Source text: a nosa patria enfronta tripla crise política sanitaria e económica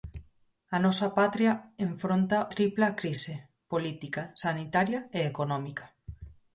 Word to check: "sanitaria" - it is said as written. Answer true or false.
true